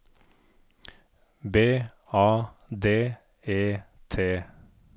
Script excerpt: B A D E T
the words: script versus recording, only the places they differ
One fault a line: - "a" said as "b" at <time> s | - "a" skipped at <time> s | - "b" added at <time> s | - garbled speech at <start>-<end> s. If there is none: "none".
none